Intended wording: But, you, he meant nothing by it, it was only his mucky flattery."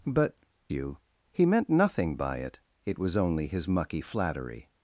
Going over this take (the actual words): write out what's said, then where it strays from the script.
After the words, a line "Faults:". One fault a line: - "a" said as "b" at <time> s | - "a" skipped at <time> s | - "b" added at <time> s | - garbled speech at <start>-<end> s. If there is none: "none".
But, you, he meant nothing by it, it was only his mucky flattery."
Faults:
none